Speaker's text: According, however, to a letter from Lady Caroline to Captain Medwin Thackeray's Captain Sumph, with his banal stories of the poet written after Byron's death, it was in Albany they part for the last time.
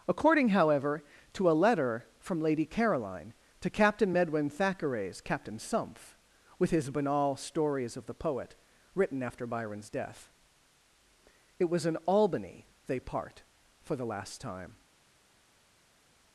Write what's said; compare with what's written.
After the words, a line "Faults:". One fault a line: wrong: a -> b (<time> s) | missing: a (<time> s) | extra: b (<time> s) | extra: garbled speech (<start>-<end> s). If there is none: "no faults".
According, however, to a letter from Lady Caroline to Captain Medwin Thackeray's Captain Sumph, with his banal stories of the poet written after Byron's death, it was in Albany they part for the last time.
Faults:
no faults